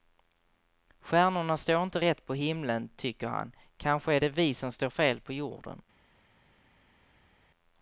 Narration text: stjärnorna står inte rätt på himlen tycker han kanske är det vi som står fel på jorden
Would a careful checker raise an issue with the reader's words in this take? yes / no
no